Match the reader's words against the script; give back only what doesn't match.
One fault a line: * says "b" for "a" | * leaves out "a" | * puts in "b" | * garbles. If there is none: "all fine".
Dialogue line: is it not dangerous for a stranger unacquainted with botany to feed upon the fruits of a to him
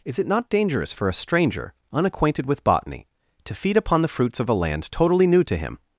* puts in "land totally new"